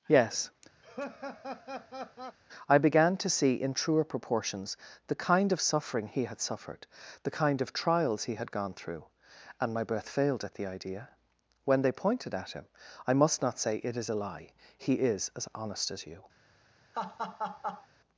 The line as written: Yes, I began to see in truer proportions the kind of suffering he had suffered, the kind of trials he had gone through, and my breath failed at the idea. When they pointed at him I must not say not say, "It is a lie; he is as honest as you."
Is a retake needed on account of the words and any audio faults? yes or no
yes